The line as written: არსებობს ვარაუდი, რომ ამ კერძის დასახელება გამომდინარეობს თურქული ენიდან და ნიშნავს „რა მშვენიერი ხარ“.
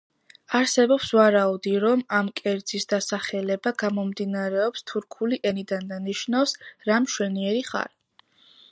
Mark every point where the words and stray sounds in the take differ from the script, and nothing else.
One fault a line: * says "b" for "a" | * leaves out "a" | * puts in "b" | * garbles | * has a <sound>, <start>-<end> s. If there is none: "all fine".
all fine